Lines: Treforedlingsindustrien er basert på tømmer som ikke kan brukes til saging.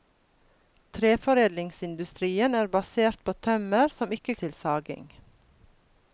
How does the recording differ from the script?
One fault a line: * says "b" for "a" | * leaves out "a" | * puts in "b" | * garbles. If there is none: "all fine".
* leaves out "kan brukes"